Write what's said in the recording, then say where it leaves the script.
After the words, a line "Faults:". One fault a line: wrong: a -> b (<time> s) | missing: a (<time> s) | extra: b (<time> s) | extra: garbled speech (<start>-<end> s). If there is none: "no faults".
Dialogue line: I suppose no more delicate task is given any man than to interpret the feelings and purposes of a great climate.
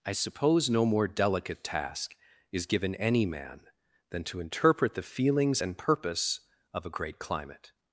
I suppose no more delicate task is given any man than to interpret the feelings and purpose of a great climate.
Faults:
wrong: purposes -> purpose (5.8 s)